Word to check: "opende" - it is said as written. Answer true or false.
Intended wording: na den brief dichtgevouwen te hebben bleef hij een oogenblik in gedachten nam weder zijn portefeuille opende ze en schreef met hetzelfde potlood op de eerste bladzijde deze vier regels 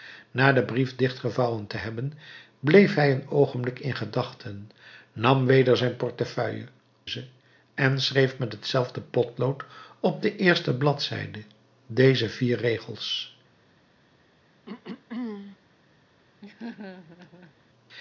false